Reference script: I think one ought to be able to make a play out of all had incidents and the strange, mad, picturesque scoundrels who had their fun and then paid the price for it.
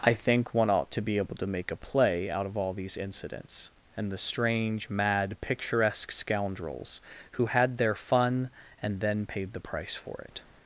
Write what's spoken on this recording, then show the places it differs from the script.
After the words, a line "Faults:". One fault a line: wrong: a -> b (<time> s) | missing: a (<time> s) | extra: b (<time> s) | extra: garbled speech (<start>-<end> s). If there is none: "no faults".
I think one ought to be able to make a play out of all these incidents and the strange, mad, picturesque scoundrels who had their fun and then paid the price for it.
Faults:
wrong: had -> these (2.7 s)